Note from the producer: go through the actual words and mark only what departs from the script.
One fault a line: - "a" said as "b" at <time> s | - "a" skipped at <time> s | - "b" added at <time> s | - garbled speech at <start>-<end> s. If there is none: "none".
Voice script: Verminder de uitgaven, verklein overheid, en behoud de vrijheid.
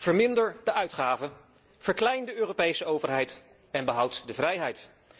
- "de Europese" added at 2.2 s